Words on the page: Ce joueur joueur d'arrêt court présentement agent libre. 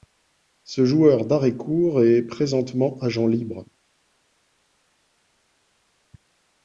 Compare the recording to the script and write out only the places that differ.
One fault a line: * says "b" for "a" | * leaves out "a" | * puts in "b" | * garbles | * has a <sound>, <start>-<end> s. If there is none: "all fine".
* leaves out "joueur"
* puts in "est"